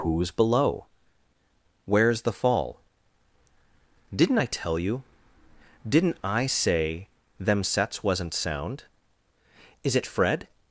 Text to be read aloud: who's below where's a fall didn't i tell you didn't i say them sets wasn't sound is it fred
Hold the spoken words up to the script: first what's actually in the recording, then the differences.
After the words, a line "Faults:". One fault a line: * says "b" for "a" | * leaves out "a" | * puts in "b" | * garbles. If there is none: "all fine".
who's below where's the fall didn't i tell you didn't i say them sets wasn't sound is it fred
Faults:
* says "the" for "a"